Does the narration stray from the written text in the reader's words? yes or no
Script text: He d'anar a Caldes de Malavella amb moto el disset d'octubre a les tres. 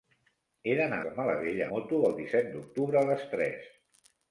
yes